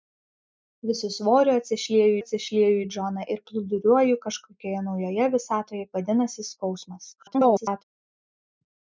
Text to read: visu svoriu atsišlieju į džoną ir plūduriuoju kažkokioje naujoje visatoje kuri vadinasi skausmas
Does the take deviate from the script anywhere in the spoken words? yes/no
yes